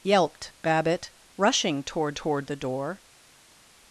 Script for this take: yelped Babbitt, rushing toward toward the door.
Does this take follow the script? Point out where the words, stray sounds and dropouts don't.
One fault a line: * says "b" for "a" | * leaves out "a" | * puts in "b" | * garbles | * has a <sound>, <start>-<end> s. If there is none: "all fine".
all fine